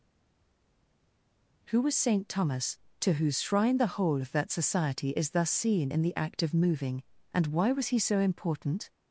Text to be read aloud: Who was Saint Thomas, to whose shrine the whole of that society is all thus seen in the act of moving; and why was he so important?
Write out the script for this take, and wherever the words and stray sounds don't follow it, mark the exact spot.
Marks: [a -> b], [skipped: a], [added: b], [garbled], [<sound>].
Who was Saint Thomas, to whose shrine the whole of that society is [skipped: all] thus seen in the act of moving; and why was he so important?